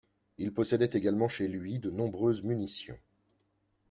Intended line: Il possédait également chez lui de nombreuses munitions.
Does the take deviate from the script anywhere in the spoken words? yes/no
no